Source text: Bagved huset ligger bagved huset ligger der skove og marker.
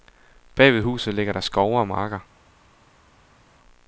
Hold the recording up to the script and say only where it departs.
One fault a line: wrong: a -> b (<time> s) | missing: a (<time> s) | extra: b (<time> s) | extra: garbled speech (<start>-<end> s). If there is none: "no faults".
missing: bagved huset ligger (1.3 s)